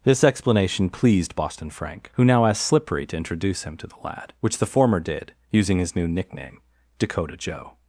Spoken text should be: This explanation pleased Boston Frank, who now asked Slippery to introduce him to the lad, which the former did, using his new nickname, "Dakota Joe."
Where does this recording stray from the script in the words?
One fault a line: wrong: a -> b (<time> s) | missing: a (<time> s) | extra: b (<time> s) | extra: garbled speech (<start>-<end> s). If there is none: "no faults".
no faults